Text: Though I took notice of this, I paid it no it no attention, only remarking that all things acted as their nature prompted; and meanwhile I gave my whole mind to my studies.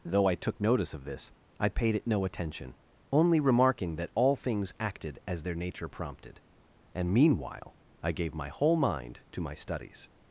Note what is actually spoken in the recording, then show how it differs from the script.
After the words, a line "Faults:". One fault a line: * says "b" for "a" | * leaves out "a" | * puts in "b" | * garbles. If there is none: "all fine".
Though I took notice of this, I paid it no attention, only remarking that all things acted as their nature prompted; and meanwhile I gave my whole mind to my studies.
Faults:
* leaves out "it no"